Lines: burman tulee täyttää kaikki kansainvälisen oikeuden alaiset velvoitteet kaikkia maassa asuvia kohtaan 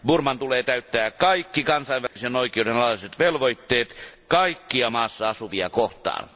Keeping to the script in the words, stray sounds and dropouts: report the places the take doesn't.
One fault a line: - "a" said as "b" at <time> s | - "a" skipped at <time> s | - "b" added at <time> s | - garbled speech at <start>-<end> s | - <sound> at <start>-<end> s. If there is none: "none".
- dropout at 2.1-2.2 s